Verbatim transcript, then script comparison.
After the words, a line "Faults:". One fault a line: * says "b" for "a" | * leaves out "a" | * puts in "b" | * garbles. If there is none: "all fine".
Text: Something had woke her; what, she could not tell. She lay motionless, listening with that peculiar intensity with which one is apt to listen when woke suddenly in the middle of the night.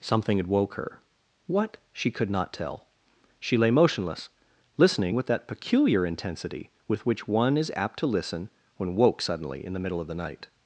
Something had woke her; what, she could not tell. She lay motionless, listening with that peculiar intensity with which one is apt to listen when woke suddenly in the middle of the night.
Faults:
all fine